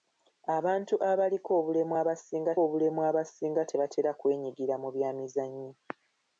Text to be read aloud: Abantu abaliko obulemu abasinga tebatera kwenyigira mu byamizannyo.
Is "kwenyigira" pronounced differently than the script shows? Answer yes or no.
no